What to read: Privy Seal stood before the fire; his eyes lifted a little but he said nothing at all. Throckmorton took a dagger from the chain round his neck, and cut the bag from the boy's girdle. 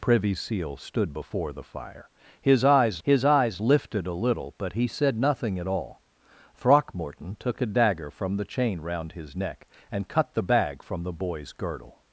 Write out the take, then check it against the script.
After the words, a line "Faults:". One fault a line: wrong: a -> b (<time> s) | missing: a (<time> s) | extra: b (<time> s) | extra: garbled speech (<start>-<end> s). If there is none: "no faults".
Privy Seal stood before the fire; his eyes his eyes lifted a little but he said nothing at all. Throckmorton took a dagger from the chain round his neck, and cut the bag from the boy's girdle.
Faults:
extra: his eyes (3.0 s)